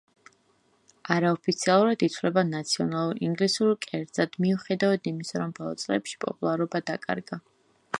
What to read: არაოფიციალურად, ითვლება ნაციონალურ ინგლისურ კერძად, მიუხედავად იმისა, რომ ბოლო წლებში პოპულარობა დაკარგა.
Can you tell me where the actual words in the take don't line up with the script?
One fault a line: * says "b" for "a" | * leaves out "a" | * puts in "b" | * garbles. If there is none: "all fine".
all fine